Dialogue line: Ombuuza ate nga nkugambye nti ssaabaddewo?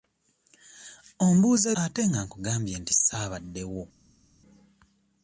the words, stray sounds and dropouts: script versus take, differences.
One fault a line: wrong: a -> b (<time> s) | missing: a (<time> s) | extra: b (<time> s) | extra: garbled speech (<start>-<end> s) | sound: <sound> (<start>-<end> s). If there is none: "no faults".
no faults